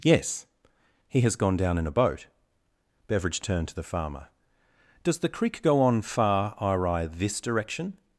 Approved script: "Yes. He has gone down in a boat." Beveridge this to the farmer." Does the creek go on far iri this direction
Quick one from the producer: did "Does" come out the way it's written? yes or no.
yes